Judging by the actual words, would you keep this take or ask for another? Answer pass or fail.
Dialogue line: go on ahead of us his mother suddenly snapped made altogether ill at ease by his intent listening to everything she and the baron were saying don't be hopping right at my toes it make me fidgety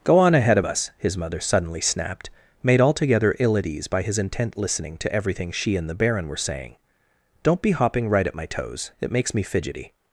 fail